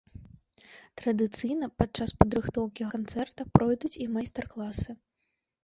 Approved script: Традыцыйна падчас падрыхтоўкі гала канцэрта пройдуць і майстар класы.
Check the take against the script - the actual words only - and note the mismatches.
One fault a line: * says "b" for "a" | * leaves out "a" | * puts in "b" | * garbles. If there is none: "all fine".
* leaves out "гала"